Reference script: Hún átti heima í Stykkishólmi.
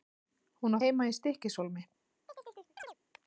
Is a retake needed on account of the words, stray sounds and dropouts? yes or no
yes